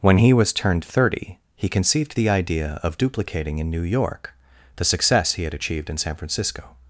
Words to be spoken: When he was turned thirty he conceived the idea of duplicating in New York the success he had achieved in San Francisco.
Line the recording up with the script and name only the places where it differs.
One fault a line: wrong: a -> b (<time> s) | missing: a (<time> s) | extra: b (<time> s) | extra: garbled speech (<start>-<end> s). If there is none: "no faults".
no faults